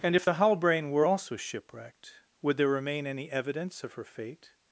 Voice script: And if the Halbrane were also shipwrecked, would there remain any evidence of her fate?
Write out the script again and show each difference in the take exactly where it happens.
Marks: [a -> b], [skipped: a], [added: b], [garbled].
And if the Halbrane were also shipwrecked, would there remain any evidence of her fate?